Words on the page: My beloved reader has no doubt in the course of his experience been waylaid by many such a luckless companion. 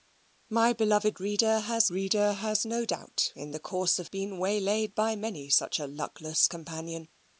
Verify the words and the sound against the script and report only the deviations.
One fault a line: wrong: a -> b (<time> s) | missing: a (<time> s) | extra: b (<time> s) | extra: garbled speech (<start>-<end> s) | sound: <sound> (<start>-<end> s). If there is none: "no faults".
extra: reader has (1.9 s)
missing: his experience (4.1 s)